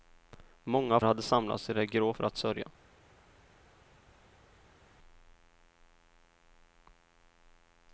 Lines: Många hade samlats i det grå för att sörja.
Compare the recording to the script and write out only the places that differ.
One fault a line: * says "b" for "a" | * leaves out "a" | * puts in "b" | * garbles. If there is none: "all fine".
all fine